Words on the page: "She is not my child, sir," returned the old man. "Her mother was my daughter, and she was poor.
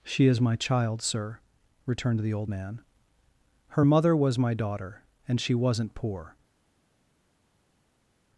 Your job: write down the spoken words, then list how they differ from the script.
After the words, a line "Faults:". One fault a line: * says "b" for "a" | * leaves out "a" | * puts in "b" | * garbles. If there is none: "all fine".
"She is my child, sir," returned the old man. "Her mother was my daughter, and she wasn't poor.
Faults:
* leaves out "not"
* says "wasn't" for "was"